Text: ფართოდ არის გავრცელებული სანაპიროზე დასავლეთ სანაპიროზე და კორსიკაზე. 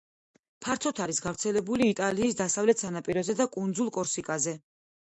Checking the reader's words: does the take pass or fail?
fail